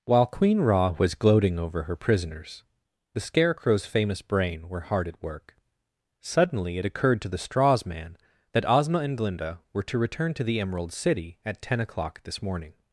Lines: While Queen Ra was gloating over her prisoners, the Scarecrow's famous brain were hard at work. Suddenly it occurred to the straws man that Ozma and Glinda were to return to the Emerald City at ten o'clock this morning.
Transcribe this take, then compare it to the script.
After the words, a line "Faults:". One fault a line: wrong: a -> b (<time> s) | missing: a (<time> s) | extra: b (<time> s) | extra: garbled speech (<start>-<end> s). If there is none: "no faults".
While Queen Ra was gloating over her prisoners, the Scarecrow's famous brain were hard at work. Suddenly it occurred to the straws man that Ozma and Glinda were to return to the Emerald City at ten o'clock this morning.
Faults:
no faults